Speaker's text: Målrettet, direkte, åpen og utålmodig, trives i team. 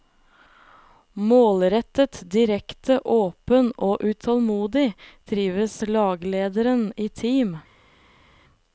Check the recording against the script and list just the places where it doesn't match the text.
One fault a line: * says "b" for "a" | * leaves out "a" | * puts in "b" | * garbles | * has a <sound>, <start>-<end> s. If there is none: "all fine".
* puts in "laglederen"